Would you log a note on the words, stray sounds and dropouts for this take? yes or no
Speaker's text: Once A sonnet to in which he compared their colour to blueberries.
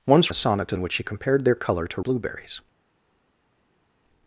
no